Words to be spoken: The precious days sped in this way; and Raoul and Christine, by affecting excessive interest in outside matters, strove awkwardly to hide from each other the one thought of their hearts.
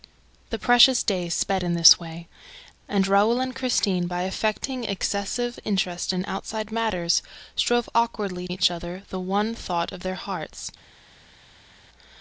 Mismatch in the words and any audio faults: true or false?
true